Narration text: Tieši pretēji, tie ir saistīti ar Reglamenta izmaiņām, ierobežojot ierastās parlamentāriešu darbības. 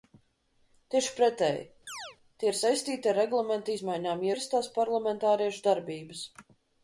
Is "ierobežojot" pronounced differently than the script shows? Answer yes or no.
yes